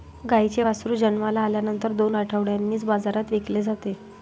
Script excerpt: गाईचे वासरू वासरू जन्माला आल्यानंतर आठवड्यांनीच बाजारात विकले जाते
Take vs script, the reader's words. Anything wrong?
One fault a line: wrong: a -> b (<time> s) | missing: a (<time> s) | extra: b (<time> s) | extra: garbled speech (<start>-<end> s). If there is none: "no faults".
missing: वासरू (0.9 s)
extra: दोन (1.9 s)